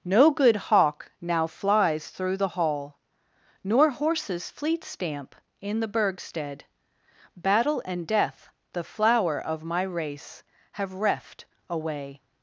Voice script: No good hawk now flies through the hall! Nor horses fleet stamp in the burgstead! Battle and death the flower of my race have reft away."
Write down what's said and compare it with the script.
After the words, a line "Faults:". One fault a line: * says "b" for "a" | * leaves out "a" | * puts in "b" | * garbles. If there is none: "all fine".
No good hawk now flies through the hall! Nor horses fleet stamp in the burgstead! Battle and death the flower of my race have reft away."
Faults:
all fine